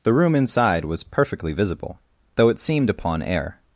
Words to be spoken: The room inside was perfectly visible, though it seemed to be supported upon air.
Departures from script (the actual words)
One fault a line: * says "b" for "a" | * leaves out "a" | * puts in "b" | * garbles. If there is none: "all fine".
* leaves out "to be supported"